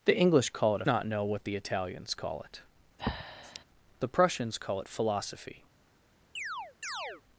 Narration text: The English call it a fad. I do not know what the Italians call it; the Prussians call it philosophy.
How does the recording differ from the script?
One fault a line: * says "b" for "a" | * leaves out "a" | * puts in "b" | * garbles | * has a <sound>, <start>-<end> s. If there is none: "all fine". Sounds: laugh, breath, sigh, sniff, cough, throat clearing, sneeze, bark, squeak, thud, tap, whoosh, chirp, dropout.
* leaves out "fad I do"
* has a breath, 3.0-3.6 s
* has a chirp, 6.4-7.2 s